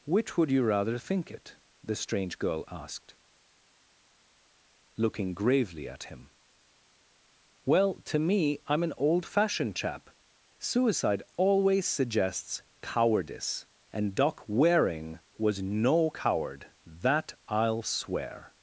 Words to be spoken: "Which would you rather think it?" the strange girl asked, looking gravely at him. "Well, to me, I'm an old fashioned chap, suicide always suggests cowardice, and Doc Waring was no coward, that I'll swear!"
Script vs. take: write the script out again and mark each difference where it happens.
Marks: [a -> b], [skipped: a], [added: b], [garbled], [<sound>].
"Which would you rather think it?" the strange girl asked, looking gravely at him. "Well, to me, I'm an old fashioned chap, suicide always suggests cowardice, and Doc Waring was no coward, that I'll swear!"